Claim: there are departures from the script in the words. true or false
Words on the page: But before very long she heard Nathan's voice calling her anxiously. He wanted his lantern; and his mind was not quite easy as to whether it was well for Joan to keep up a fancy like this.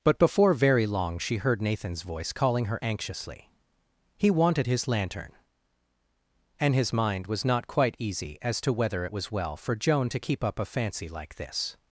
false